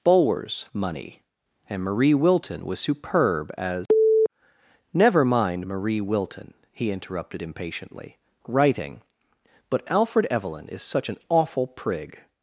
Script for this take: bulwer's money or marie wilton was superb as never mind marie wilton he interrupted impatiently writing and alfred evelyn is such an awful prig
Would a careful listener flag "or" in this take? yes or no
yes